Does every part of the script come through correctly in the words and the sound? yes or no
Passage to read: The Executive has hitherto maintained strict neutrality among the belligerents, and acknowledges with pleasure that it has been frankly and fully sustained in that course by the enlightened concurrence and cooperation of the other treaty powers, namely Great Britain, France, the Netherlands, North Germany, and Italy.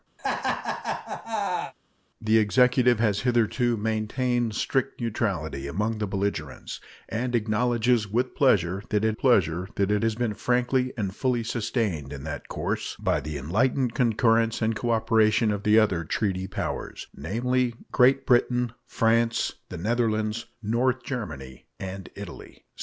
no